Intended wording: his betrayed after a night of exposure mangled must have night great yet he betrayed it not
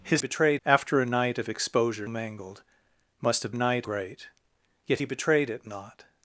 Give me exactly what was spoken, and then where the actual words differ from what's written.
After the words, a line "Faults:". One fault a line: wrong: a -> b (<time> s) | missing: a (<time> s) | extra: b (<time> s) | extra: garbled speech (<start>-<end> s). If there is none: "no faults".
his betrayed after a night of exposure mangled must have night great yet he betrayed it not
Faults:
no faults